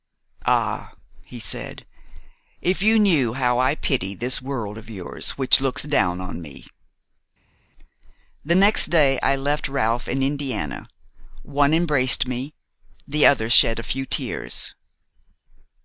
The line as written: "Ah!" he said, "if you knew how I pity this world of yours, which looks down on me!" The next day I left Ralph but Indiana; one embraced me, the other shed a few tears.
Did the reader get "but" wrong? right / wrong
wrong